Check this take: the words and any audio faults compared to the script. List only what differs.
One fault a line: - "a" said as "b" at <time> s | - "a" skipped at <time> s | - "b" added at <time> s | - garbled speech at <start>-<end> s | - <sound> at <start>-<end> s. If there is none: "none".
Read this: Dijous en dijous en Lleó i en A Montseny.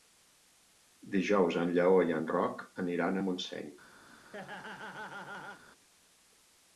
- "dijous en" skipped at 1.8 s
- "Roc aniran" added at 2.3 s
- laugh at 4.1-5.6 s